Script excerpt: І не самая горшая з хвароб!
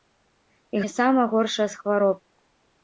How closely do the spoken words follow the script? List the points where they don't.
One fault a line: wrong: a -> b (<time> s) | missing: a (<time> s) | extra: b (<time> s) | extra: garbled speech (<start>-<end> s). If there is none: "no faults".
no faults